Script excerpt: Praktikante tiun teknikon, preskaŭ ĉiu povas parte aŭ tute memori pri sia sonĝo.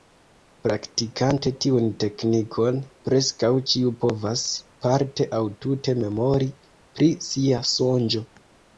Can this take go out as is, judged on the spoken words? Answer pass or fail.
pass